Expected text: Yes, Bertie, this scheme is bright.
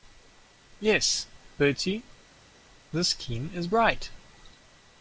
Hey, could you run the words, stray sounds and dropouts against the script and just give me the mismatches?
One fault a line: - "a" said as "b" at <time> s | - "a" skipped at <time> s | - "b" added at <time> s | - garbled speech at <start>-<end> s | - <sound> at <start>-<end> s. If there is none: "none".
none